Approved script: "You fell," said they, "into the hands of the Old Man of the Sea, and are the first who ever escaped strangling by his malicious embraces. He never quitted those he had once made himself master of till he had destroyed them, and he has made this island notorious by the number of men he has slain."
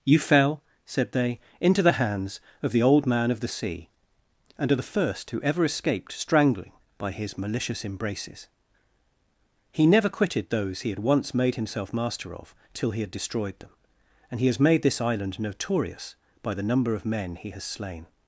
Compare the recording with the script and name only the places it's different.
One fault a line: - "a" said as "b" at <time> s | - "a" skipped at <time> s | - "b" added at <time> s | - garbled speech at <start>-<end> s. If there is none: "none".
none